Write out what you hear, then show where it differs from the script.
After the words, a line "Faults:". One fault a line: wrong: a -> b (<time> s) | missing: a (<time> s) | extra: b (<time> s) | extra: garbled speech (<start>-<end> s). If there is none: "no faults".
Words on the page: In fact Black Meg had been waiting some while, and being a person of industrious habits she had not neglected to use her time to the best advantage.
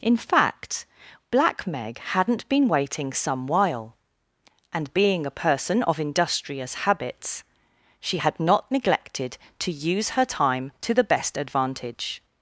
In fact Black Meg hadn't been waiting some while, and being a person of industrious habits she had not neglected to use her time to the best advantage.
Faults:
wrong: had -> hadn't (2.0 s)